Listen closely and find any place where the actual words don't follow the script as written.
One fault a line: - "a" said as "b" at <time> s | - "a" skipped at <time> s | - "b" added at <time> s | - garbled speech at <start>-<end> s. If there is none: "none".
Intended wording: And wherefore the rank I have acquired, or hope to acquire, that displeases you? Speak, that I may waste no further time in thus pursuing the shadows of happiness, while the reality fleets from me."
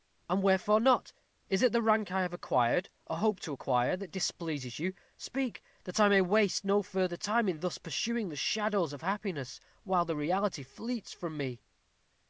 - "not Is it" added at 0.8 s